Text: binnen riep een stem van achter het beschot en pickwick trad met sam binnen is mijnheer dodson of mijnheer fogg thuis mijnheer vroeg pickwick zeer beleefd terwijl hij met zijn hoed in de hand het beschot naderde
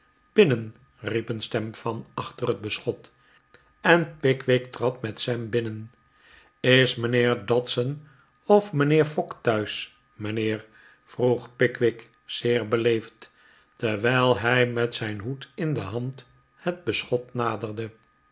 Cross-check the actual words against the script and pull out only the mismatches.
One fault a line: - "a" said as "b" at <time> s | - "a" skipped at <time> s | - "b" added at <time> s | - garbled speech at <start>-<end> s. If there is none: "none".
none